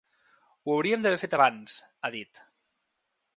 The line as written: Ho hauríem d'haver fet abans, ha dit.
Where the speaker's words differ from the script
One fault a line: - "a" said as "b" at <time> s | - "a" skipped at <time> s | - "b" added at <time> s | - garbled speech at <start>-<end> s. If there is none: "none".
none